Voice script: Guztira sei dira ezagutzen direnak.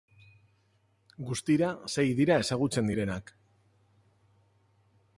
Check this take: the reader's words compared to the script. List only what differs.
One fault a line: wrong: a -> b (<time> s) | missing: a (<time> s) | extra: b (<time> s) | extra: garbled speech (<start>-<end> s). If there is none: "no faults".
no faults